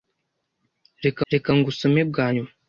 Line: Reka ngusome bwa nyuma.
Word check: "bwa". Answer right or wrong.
right